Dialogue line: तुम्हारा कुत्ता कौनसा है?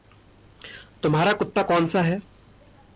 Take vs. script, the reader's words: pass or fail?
pass